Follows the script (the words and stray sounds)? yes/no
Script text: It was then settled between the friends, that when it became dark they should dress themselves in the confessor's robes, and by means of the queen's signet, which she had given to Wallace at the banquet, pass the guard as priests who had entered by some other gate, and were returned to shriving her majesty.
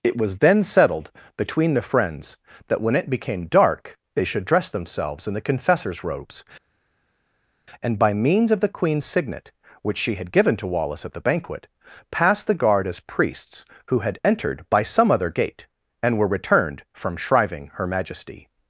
no